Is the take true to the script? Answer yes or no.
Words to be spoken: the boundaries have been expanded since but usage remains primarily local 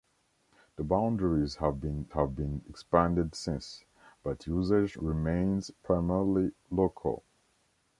no